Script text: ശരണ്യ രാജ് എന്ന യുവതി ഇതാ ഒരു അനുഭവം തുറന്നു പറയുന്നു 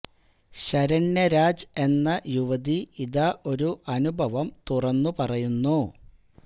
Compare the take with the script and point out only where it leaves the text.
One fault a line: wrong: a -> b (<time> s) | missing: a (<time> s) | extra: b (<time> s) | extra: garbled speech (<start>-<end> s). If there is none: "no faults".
no faults